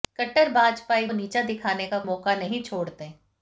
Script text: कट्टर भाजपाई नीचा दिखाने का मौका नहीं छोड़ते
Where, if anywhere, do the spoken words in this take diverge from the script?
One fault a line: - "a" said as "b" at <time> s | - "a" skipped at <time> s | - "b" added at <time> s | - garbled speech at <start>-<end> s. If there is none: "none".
none